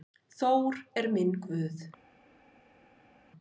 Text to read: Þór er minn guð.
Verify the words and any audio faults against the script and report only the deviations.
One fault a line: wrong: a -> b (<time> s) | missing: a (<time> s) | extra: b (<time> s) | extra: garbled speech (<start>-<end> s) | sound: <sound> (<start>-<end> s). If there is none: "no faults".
no faults